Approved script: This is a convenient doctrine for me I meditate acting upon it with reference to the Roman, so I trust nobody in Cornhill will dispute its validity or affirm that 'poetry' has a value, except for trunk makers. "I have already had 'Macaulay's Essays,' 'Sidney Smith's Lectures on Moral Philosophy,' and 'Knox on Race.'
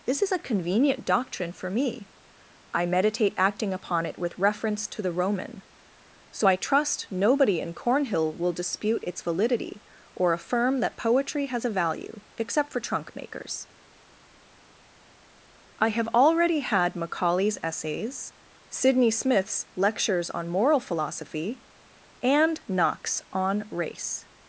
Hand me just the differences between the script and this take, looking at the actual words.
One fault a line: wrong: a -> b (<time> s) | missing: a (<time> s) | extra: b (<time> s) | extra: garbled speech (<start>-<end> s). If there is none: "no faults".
no faults